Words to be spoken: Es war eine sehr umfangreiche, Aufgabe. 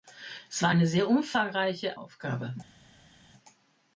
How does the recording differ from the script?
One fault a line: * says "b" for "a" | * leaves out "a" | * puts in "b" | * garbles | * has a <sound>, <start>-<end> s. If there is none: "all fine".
all fine